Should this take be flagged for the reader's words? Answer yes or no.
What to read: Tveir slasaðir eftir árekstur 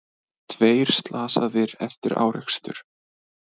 no